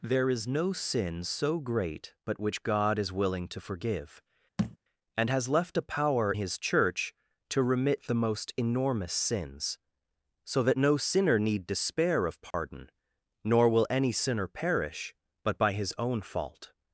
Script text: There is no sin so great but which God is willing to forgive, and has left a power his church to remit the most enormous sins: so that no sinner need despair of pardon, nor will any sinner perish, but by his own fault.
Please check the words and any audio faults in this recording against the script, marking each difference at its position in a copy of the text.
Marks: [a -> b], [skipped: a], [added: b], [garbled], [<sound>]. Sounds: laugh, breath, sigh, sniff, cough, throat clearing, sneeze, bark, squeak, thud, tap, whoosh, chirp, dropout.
There is no sin so great but which God is willing to forgive, [thud] and has left a power his church to remit the most enormous sins: so that no sinner need despair of pardon, [dropout] nor will any sinner perish, but by his own fault.